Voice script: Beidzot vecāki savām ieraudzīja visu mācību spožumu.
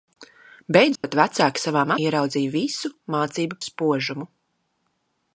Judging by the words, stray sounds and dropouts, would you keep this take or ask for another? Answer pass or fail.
fail